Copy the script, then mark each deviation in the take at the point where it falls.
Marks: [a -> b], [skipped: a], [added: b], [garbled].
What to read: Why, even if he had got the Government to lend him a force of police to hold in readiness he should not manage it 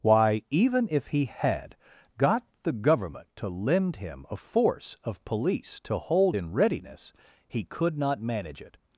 Why, even if he had got the Government to lend him a force of police to hold in readiness he [should -> could] not manage it